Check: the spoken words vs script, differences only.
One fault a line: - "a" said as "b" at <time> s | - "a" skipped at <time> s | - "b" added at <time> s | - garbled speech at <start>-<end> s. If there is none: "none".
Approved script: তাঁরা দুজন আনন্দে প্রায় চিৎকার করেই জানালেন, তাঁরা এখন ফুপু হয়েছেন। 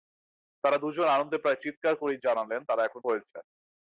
- "ফুপু" skipped at 3.0 s